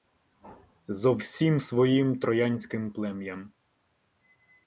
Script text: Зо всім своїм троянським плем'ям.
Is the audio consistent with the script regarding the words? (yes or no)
yes